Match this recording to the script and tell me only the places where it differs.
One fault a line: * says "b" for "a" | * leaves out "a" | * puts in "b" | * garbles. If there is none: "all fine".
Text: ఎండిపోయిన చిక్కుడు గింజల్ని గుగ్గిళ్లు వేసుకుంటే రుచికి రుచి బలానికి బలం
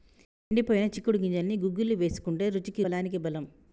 * leaves out "రుచి"